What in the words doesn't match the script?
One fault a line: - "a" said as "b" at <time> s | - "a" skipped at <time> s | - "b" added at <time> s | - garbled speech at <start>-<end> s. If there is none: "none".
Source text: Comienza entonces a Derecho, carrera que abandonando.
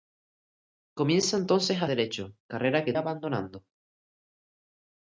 none